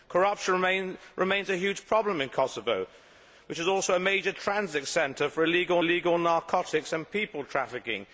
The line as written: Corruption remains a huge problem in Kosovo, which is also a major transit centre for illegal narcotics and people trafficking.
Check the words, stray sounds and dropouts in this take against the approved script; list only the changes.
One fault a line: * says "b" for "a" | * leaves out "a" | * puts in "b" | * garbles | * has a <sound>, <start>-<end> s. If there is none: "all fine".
* puts in "illegal"